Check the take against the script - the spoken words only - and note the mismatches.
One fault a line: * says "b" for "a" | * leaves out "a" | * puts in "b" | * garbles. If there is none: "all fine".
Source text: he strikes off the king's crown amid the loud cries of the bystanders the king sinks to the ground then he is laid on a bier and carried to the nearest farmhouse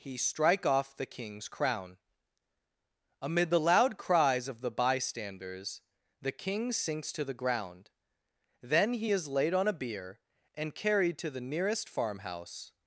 * says "strike" for "strikes"